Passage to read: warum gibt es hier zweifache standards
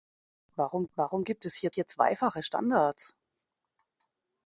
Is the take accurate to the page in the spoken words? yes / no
no